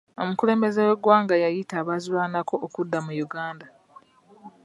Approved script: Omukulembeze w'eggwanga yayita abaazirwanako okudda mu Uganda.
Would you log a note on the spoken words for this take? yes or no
no